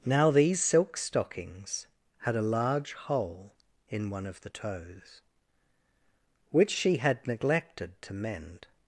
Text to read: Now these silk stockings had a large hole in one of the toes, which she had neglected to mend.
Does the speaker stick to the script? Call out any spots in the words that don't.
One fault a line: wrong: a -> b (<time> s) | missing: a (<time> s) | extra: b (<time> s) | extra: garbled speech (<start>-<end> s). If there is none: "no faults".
no faults